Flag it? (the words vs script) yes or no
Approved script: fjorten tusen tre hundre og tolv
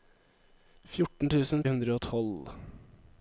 yes